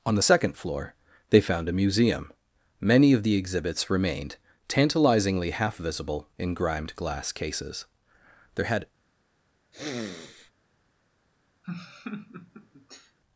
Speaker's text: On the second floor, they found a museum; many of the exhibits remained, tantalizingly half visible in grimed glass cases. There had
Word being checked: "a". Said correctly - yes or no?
yes